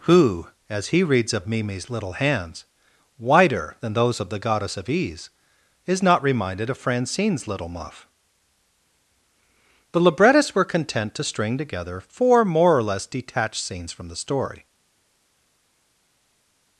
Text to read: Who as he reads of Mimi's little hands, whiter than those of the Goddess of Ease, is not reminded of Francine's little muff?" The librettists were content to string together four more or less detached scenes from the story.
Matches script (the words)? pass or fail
pass